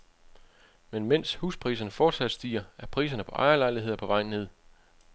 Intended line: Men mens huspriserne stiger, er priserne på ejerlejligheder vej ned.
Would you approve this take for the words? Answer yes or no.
no